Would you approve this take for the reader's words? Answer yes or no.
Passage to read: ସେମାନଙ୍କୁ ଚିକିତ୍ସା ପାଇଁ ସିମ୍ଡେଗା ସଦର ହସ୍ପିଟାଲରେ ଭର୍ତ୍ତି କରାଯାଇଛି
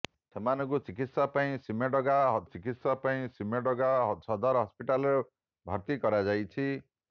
no